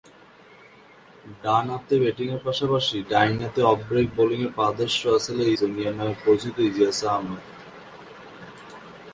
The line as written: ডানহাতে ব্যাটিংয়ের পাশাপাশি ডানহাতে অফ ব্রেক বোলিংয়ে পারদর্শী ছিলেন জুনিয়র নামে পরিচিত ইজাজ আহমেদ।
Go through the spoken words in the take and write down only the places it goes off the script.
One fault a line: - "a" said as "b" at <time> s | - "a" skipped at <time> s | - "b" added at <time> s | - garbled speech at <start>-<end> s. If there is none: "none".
none